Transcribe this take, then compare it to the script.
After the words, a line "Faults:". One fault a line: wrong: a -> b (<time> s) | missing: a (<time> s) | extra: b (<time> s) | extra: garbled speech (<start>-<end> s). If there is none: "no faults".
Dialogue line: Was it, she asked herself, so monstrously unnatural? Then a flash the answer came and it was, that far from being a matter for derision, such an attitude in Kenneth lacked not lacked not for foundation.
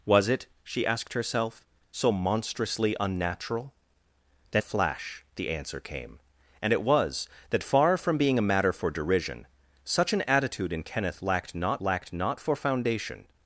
Was it, she asked herself, so monstrously unnatural? Then a flash the answer came and it was, that far from being a matter for derision, such an attitude in Kenneth lacked not lacked not for foundation.
Faults:
no faults